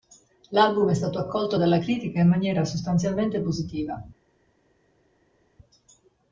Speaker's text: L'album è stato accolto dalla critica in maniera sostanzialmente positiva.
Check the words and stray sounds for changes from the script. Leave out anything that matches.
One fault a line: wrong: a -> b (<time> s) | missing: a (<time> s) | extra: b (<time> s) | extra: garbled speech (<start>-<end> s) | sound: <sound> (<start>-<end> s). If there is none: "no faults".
no faults